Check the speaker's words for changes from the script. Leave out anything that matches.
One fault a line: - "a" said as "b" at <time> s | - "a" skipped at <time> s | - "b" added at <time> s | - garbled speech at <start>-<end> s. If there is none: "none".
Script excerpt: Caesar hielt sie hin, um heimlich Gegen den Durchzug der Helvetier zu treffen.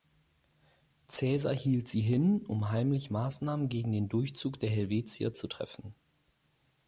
- "Maßnahmen" added at 3.1 s